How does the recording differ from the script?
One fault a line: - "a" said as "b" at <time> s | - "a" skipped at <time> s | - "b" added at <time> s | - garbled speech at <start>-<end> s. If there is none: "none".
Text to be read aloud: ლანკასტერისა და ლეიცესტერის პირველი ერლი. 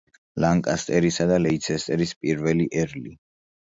none